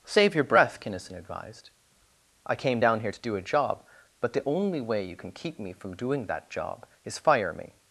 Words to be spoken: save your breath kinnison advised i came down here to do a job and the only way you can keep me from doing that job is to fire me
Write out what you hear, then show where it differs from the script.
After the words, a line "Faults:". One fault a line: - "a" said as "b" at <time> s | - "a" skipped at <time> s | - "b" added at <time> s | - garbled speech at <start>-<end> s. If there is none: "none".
save your breath kinnison advised i came down here to do a job but the only way you can keep me from doing that job is fire me
Faults:
- "and" said as "but" at 4.2 s
- "to" skipped at 7.2 s